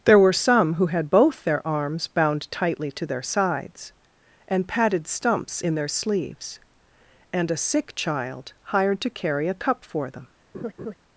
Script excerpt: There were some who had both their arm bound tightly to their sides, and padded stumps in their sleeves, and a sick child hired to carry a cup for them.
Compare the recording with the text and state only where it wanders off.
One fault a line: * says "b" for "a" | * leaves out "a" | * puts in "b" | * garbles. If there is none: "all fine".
* says "arms" for "arm"